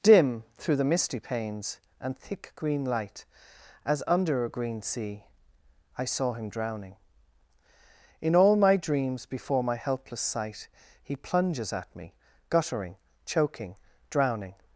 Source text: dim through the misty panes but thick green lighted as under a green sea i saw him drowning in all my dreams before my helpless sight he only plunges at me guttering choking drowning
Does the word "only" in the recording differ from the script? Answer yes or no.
yes